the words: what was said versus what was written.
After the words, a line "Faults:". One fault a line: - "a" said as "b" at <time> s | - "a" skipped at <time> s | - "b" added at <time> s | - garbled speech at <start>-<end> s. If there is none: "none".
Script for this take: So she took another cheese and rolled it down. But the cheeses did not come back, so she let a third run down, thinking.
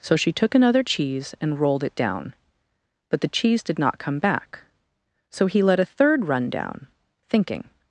So she took another cheese and rolled it down. But the cheese did not come back, so he let a third run down, thinking.
Faults:
- "cheeses" said as "cheese" at 3.3 s
- "she" said as "he" at 5.5 s